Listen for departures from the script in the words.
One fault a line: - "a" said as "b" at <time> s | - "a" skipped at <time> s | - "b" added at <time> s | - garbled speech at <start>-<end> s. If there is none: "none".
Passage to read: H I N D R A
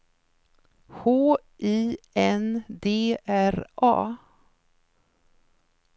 none